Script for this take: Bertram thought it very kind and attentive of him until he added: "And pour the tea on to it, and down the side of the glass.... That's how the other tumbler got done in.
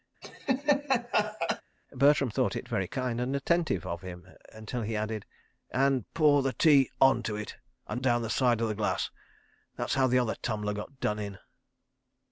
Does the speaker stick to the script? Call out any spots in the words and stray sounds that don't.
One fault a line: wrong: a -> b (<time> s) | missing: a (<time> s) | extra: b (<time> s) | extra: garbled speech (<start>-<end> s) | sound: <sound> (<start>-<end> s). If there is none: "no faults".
sound: laugh (0.2-1.6 s)